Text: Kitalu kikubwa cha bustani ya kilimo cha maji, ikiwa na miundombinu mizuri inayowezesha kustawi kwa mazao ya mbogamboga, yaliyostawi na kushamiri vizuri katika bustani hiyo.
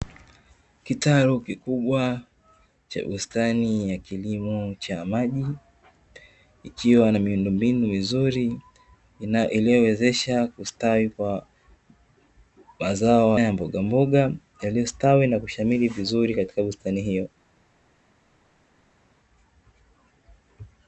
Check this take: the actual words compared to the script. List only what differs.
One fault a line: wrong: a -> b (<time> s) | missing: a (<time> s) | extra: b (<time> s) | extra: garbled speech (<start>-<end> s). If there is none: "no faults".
no faults